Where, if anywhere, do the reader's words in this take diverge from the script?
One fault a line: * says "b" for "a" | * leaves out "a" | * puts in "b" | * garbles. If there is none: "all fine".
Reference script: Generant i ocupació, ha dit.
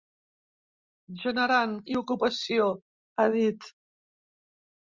all fine